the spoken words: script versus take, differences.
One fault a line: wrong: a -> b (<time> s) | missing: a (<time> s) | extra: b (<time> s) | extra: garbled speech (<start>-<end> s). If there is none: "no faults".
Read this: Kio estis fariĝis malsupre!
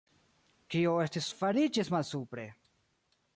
no faults